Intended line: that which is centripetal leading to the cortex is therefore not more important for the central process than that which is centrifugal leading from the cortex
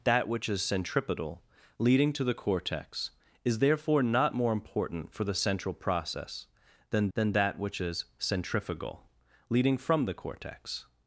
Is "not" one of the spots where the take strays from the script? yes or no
no